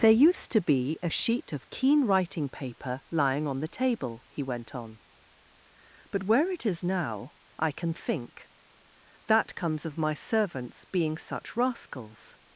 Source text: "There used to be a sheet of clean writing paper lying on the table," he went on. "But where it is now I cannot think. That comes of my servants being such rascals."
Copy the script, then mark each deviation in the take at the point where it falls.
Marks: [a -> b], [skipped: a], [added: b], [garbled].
"There used to be a sheet of [clean -> keen] writing paper lying on the table," he went on. "But where it is now I [cannot -> can] think. That comes of my servants being such rascals."